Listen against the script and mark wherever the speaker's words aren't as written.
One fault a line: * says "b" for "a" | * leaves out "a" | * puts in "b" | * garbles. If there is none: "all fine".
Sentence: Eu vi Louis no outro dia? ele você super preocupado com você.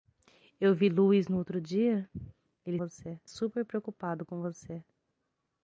all fine